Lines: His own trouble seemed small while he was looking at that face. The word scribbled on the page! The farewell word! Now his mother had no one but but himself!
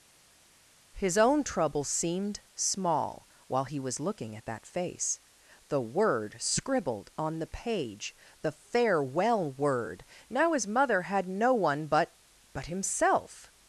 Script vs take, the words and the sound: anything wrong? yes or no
no